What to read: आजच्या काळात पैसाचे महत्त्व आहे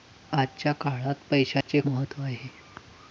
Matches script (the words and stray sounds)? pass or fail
fail